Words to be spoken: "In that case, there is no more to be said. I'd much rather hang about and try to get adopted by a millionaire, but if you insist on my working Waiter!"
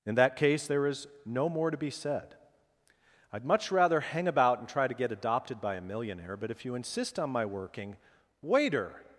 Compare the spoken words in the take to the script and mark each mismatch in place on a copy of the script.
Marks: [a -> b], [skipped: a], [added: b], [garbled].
"In that case, there is no more to be said. I'd much rather hang about and try to get adopted by a millionaire, but if you insist on my working Waiter!"